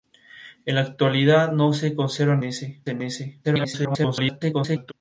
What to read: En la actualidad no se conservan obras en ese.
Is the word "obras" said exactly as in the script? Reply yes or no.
no